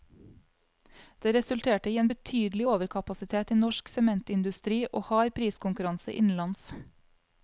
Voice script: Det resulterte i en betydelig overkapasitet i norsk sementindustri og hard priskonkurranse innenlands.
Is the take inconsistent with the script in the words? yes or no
no